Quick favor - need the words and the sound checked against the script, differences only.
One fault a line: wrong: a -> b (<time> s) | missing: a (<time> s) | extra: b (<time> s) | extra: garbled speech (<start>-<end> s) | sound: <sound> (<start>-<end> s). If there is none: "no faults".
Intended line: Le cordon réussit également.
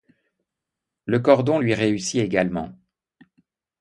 extra: lui (1.6 s)